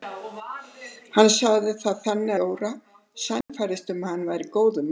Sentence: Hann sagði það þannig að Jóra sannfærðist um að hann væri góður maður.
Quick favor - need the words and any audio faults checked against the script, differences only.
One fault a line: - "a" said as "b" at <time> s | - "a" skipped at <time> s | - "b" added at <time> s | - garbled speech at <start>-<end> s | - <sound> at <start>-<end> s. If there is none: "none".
- "að" skipped at 2.4 s
- dropout at 3.4-3.5 s